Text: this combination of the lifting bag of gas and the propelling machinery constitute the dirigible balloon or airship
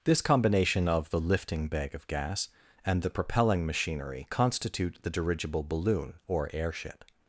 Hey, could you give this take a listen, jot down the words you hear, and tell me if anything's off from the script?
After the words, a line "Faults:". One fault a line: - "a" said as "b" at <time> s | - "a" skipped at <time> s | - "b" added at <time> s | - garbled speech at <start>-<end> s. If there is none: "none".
this combination of the lifting bag of gas and the propelling machinery constitute the dirigible balloon or airship
Faults:
none